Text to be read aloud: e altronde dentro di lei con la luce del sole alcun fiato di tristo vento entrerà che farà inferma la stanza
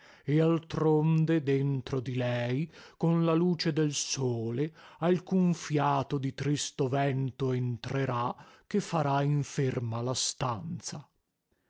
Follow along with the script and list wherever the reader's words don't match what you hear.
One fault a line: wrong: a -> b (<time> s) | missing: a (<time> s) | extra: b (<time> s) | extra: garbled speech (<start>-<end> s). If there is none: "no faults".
no faults